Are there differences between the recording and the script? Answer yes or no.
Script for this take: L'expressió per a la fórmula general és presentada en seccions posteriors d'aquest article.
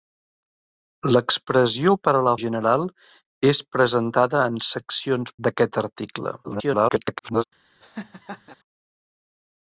yes